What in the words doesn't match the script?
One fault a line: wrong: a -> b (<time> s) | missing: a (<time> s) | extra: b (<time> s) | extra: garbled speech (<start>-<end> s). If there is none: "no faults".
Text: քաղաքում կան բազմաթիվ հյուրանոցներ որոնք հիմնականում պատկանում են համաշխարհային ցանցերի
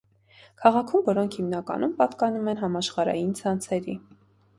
missing: կան բազմաթիվ հյուրանոցներ (1.0 s)